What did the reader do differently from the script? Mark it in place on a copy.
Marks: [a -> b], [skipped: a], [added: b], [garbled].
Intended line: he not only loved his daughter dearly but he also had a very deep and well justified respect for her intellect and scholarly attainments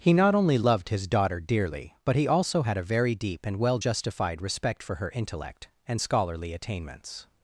he not only loved his daughter dearly but he also had a very deep and well justified respect for her intellect and scholarly attainments